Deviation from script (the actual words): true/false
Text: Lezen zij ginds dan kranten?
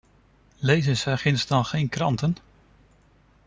true